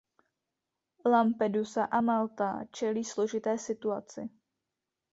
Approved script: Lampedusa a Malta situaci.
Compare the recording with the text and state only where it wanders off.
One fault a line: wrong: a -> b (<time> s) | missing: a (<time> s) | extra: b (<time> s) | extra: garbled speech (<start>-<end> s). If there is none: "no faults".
extra: čelí složité (2.7 s)